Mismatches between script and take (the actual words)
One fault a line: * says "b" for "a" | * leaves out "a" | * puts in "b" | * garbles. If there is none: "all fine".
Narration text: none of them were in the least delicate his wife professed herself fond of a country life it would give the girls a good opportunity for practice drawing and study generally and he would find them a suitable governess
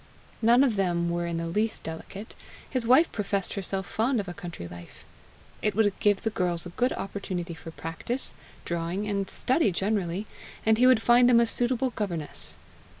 all fine